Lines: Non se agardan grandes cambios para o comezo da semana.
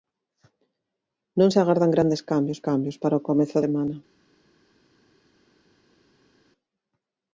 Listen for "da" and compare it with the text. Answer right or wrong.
wrong